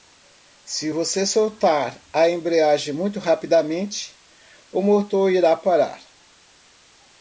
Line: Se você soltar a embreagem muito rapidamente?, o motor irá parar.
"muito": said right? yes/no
yes